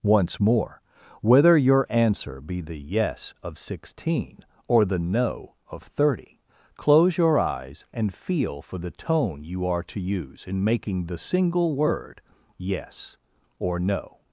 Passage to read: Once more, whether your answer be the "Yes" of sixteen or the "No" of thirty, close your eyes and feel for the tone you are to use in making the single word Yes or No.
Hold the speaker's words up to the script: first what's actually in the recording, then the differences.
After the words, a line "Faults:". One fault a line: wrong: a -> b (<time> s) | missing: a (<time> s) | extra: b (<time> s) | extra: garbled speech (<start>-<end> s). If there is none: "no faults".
Once more, whether your answer be the "Yes" of sixteen or the "No" of thirty, close your eyes and feel for the tone you are to use in making the single word Yes or No.
Faults:
no faults